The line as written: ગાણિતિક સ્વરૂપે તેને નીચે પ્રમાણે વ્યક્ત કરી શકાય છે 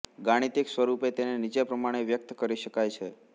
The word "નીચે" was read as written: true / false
true